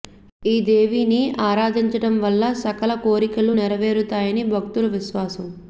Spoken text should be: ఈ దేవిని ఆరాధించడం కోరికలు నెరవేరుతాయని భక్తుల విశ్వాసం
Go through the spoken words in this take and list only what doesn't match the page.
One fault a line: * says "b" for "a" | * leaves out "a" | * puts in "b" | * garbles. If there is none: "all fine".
* puts in "వల్ల సకల"